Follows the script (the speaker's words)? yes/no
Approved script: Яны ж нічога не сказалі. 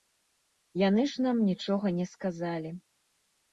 no